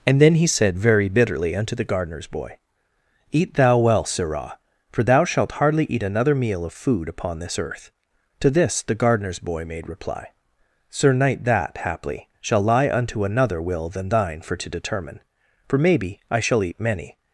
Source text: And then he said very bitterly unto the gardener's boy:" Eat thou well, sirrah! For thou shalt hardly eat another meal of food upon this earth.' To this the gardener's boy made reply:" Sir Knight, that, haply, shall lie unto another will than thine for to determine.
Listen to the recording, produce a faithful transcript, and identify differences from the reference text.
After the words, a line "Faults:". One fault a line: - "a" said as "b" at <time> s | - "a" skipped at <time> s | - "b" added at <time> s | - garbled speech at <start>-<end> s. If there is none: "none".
And then he said very bitterly unto the gardener's boy:" Eat thou well, sirrah! For thou shalt hardly eat another meal of food upon this earth.' To this the gardener's boy made reply:" Sir Knight, that, haply, shall lie unto another will than thine for to determine. For maybe, I shall eat many
Faults:
- "For maybe I shall eat many" added at 15.7 s